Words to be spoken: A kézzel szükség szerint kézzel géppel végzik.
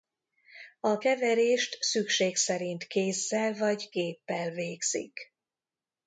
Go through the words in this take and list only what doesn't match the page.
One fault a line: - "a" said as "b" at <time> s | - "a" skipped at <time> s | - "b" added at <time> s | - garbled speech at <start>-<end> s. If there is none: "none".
- "kézzel" said as "keverést" at 1.0 s
- "vagy" added at 3.5 s